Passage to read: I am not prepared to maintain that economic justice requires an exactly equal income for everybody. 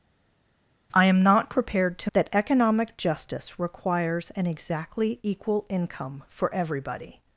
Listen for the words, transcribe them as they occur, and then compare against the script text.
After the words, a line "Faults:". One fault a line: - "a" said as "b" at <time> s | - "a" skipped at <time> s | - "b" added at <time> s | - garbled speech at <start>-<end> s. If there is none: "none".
I am not prepared to that economic justice requires an exactly equal income for everybody.
Faults:
- "maintain" skipped at 2.1 s